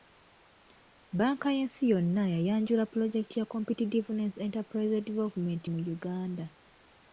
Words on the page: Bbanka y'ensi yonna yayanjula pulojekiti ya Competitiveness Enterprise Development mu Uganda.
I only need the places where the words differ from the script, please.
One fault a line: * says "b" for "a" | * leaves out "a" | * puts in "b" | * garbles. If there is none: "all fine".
all fine